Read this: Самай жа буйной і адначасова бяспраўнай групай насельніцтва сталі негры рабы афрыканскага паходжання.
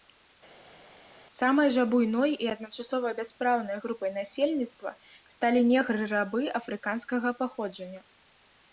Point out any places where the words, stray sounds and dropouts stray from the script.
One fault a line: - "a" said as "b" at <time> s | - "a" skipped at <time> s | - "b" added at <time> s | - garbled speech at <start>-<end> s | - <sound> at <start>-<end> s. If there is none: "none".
none